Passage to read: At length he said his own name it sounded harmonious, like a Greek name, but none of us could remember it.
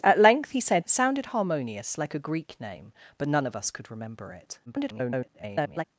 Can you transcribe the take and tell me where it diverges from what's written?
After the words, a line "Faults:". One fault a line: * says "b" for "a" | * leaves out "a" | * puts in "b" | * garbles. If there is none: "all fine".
At length he said it sounded harmonious, like a Greek name, but none of us could remember it. [garbled]
Faults:
* leaves out "his own name"
* garbles